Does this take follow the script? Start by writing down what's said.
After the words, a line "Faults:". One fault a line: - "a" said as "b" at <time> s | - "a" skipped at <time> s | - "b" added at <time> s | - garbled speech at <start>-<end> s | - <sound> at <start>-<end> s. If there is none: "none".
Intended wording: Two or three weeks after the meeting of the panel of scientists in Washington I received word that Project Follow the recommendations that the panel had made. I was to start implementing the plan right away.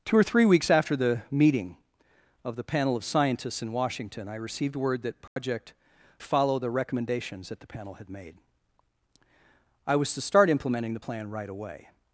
Two or three weeks after the meeting of the panel of scientists in Washington I received word that Project Follow the recommendations that the panel had made. I was to start implementing the plan right away.
Faults:
- dropout at 5.3-5.4 s